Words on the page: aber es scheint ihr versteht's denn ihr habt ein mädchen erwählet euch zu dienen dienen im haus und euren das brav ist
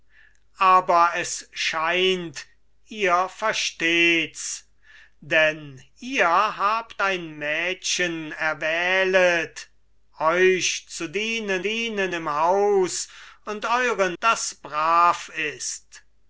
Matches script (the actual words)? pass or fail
pass